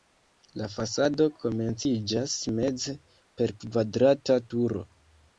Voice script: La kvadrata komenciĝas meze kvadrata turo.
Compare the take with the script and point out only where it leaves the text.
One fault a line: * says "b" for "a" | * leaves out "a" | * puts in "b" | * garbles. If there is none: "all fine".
* says "fasado" for "kvadrata"
* puts in "per"